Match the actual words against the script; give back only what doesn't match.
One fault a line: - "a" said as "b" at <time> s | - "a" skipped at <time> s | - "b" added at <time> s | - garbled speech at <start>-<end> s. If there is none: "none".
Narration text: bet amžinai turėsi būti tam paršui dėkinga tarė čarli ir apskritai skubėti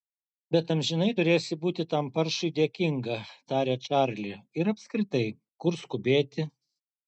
- "kur" added at 5.7 s